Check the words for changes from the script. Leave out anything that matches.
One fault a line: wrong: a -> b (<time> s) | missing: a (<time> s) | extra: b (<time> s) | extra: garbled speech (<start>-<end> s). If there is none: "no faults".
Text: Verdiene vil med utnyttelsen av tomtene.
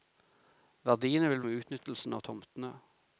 no faults